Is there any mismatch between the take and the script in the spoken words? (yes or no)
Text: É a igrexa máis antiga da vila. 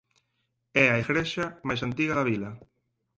no